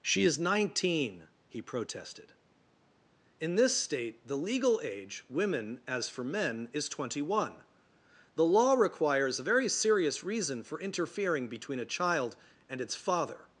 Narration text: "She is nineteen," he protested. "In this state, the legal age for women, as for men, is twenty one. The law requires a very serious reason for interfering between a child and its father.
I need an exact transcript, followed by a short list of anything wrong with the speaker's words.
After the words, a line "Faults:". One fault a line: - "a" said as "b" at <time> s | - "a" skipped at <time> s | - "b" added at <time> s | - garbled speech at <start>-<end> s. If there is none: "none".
"She is nineteen," he protested. "In this state, the legal age women, as for men, is twenty one. The law requires a very serious reason for interfering between a child and its father.
Faults:
- "for" skipped at 5.2 s